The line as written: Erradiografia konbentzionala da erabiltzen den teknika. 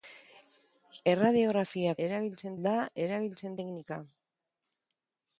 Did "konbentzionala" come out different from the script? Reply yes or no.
yes